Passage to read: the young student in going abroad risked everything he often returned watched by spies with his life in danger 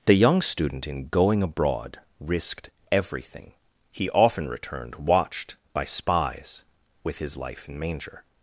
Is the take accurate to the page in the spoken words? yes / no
no